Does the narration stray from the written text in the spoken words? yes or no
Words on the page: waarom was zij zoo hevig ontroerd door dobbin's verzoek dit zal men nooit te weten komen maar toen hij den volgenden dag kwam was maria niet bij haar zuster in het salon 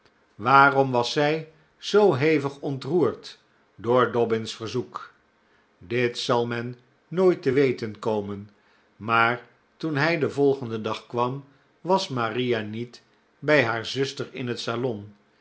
no